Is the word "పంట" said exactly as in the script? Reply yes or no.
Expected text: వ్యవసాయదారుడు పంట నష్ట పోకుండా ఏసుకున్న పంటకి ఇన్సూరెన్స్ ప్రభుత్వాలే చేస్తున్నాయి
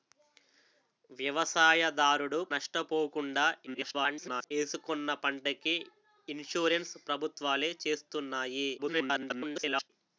no